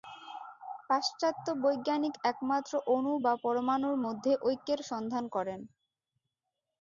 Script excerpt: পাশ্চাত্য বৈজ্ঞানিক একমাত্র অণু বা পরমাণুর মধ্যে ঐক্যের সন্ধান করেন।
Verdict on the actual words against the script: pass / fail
pass